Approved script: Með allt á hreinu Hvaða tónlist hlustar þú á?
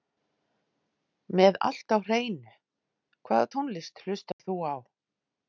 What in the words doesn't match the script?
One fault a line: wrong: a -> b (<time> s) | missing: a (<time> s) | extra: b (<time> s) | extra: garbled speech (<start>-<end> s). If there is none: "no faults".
no faults